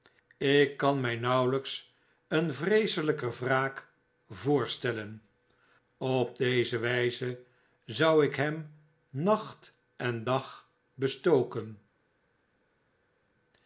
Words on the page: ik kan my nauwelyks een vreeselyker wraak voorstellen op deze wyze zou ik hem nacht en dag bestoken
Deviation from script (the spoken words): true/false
false